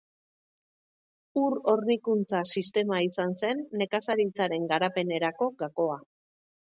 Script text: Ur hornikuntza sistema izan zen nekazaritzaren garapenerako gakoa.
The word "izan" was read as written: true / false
true